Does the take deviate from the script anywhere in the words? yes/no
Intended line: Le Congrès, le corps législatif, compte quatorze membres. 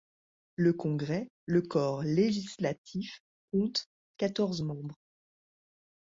no